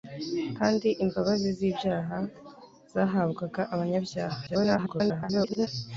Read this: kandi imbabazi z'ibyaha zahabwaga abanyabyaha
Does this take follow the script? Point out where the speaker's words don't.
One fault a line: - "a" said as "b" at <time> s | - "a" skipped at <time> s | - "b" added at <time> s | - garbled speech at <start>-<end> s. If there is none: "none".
- garbled speech at 4.5-5.7 s